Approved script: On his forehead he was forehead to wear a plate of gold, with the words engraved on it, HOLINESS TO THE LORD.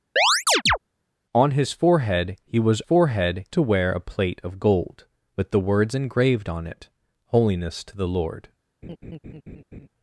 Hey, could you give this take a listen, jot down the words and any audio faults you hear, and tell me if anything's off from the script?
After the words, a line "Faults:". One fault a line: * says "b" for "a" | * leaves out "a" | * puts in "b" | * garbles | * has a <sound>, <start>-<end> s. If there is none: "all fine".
On his forehead he was forehead to wear a plate of gold, with the words engraved on it, HOLINESS TO THE LORD.
Faults:
* has a chirp, 0.2-0.8 s
* has a laugh, 8.8-9.9 s